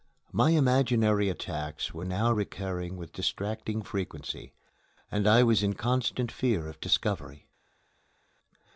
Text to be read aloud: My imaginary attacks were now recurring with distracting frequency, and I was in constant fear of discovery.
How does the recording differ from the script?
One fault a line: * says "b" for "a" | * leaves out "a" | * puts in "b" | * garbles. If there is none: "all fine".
all fine